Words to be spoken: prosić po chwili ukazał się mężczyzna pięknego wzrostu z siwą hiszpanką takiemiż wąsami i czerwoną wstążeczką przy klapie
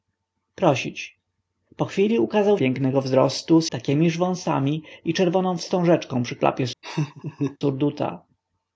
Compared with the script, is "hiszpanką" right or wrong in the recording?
wrong